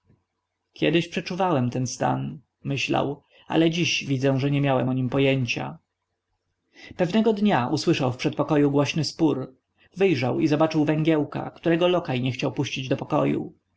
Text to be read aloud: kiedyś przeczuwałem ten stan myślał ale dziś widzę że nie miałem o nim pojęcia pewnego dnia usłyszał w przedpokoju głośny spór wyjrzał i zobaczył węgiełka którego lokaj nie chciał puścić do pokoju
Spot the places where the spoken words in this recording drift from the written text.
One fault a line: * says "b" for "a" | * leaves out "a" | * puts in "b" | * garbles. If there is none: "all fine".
all fine